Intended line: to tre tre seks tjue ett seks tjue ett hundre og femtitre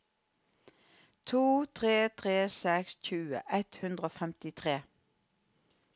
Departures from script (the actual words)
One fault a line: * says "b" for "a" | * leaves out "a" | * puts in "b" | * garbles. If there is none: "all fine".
* leaves out "seks tjue ett"